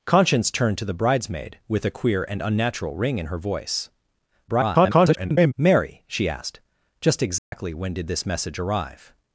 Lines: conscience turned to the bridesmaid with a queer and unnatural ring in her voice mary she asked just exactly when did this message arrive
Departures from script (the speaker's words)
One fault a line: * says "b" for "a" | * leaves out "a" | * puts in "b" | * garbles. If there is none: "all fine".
* garbles